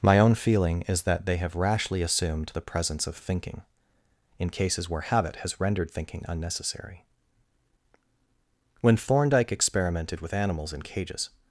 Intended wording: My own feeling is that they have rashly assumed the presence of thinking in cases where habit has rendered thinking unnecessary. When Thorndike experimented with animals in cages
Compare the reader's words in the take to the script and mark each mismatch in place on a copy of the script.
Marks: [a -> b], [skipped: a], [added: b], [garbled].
My own feeling is that they have rashly assumed the presence of thinking in cases where habit has rendered thinking unnecessary. When Thorndike experimented with animals in cages